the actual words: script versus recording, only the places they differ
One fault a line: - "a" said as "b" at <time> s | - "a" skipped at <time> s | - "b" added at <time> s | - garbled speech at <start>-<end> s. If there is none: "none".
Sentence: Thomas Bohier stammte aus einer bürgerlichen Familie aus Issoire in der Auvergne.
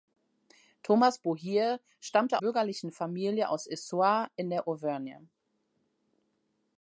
- "aus einer" skipped at 2.4 s